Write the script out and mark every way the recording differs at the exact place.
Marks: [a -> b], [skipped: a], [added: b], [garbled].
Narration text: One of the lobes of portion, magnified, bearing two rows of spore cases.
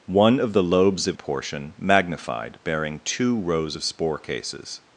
One of the lobes of portion, magnified, bearing two rows of spore cases.